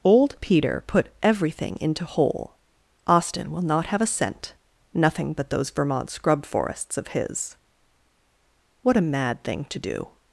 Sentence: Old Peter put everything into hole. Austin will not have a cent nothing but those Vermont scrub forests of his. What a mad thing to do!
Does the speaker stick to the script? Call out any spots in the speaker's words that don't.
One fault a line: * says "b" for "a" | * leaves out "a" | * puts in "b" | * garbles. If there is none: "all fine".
all fine